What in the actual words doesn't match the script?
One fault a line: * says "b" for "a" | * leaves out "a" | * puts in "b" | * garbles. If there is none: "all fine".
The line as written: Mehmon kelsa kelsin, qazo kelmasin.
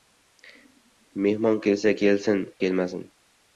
* leaves out "qazo"